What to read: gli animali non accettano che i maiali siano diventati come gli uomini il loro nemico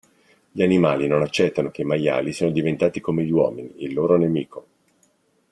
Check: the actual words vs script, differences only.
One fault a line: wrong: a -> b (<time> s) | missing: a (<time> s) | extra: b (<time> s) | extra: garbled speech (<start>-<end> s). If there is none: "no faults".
no faults